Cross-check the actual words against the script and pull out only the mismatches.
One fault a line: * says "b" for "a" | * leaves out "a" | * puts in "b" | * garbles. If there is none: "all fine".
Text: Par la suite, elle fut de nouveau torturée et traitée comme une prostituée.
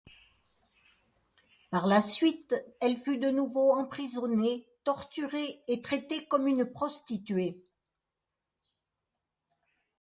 * puts in "emprisonnée"